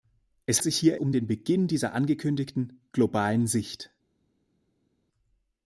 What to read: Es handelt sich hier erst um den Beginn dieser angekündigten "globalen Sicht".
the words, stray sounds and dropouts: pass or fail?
fail